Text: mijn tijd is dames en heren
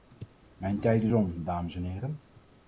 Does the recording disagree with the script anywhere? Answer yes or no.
yes